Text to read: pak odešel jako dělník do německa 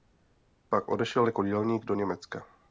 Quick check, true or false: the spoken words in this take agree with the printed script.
true